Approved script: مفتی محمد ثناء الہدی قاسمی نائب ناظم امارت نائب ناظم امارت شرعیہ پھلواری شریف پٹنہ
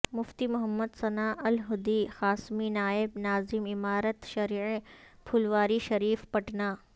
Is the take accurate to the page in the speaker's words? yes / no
no